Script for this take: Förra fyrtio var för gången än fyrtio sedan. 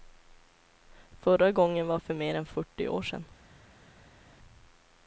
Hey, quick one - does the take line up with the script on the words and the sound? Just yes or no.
no